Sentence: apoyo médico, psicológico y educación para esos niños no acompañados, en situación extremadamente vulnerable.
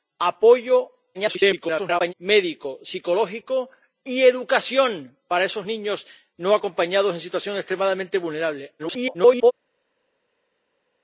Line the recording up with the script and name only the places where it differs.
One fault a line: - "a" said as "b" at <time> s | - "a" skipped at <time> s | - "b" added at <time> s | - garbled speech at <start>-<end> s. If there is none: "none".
- garbled speech at 1.1-2.1 s
- garbled speech at 8.8-9.5 s